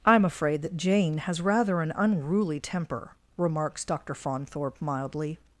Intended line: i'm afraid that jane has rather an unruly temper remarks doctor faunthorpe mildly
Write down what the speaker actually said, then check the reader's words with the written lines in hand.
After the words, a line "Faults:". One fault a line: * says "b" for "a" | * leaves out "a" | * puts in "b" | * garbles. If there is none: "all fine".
i'm afraid that jane has rather an unruly temper remarks doctor faunthorpe mildly
Faults:
all fine